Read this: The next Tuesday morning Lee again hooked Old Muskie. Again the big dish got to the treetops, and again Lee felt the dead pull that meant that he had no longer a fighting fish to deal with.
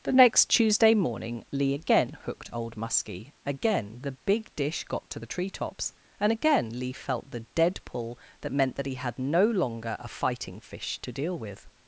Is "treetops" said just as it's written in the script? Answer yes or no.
yes